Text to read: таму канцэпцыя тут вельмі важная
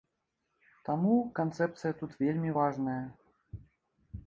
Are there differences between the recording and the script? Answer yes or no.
no